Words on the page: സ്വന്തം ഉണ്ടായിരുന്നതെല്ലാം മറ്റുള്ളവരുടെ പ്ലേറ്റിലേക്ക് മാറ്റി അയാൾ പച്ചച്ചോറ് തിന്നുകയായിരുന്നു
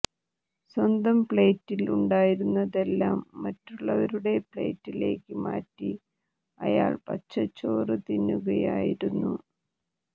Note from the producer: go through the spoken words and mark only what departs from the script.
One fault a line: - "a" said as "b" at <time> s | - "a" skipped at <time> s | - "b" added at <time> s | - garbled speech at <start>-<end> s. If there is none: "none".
- "പ്ലേറ്റിൽ" added at 1.2 s